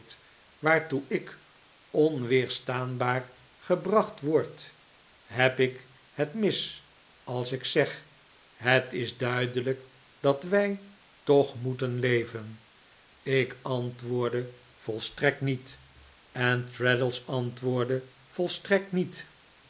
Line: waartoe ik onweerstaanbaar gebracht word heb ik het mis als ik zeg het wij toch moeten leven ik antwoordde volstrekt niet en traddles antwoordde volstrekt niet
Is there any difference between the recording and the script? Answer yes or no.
yes